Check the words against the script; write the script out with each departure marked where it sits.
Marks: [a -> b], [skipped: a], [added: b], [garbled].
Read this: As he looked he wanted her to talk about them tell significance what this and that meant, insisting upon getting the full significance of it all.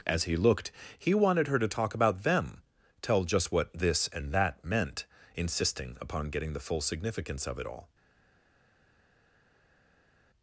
As he looked he wanted her to talk about them tell [significance -> just] what this and that meant, insisting upon getting the full significance of it all.